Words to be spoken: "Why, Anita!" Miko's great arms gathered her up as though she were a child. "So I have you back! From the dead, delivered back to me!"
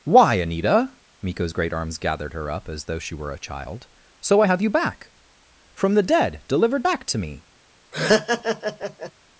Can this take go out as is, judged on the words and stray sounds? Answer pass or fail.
fail